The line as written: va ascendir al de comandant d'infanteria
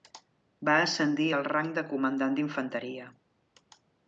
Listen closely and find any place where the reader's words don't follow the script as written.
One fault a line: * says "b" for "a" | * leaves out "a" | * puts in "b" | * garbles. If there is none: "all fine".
* puts in "rang"